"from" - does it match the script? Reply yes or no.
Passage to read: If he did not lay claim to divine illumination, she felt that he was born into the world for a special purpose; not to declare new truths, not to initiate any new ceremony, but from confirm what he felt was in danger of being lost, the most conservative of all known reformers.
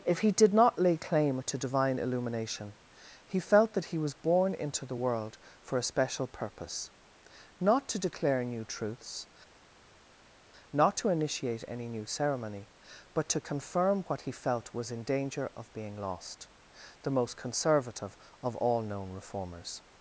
no